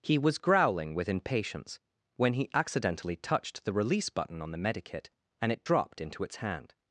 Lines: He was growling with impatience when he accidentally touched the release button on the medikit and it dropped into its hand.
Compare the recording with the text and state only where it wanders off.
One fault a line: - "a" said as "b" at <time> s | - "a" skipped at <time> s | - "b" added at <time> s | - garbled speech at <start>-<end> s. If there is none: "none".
none